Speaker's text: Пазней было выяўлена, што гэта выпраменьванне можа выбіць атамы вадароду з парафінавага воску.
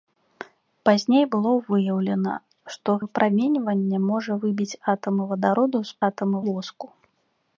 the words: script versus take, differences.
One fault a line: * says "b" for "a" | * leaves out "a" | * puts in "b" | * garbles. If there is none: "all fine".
* leaves out "гэта"
* says "атамы" for "парафінавага"